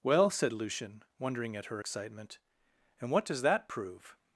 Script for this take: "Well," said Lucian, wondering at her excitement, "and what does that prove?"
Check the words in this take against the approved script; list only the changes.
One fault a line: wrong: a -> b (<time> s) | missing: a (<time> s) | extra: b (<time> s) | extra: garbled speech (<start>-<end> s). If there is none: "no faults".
no faults